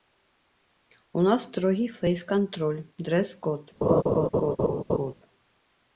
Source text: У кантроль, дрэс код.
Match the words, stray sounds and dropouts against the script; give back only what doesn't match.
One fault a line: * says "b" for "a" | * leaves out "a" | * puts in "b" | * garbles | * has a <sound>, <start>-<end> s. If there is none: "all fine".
* puts in "нас строгі фэйс"
* has a laugh, 3.8-5.1 s